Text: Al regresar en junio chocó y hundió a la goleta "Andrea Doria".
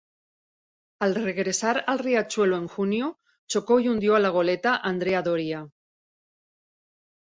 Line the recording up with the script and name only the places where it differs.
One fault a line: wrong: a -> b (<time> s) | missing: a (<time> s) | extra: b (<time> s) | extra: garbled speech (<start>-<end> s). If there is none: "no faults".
extra: al Riachuelo (1.9 s)